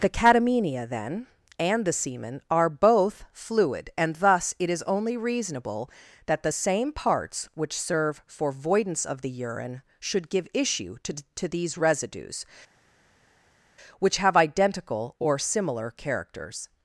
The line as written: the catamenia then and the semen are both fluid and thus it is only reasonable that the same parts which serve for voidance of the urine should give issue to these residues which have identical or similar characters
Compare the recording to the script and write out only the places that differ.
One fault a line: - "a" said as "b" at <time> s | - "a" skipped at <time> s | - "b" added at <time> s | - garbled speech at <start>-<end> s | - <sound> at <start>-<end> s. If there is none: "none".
- "to" added at 11.3 s